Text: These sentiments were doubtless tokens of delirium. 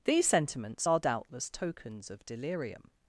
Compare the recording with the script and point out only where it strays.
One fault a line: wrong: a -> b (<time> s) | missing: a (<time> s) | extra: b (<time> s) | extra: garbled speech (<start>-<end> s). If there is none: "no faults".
wrong: were -> are (0.9 s)